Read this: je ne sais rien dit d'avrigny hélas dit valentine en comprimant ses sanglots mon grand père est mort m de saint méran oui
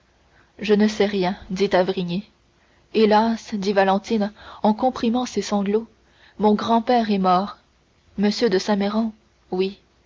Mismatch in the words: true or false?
false